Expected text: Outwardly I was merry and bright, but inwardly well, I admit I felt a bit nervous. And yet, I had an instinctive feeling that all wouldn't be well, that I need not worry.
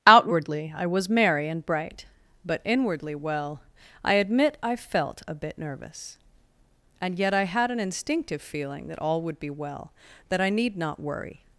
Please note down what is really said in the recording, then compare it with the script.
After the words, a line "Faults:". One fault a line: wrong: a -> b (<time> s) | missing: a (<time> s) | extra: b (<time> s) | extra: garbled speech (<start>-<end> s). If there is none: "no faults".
Outwardly I was merry and bright, but inwardly well, I admit I felt a bit nervous. And yet, I had an instinctive feeling that all would be well, that I need not worry.
Faults:
wrong: wouldn't -> would (9.2 s)